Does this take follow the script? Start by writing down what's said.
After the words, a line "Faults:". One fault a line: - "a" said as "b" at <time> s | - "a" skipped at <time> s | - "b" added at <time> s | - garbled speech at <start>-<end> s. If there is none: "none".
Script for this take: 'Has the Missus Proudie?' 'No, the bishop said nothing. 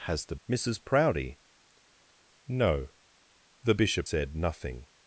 'Has the Missus Proudie?' 'No, the bishop said nothing.
Faults:
none